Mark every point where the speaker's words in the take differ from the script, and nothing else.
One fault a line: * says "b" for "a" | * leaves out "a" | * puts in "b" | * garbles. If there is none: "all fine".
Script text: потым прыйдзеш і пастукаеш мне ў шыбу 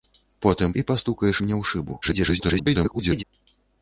* leaves out "прыйдзеш"
* garbles